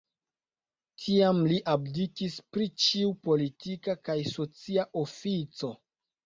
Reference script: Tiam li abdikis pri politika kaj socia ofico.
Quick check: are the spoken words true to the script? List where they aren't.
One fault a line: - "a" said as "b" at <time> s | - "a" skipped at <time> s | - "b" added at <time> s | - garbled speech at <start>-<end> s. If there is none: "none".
- "ĉiu" added at 2.8 s